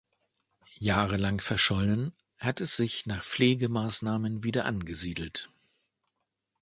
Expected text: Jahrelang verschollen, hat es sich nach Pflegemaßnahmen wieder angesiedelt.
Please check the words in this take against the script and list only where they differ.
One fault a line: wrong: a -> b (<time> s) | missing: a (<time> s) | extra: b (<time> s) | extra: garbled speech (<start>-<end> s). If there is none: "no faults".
no faults